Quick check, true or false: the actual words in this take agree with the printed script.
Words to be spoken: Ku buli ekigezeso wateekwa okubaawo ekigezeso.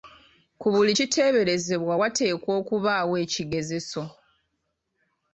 false